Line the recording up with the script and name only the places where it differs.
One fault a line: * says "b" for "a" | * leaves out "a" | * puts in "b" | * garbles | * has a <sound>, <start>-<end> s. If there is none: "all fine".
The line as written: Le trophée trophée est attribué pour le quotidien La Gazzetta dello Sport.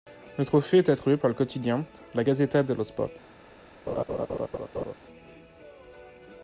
* leaves out "trophée"
* says "par" for "pour"
* has a laugh, 3.9-4.9 s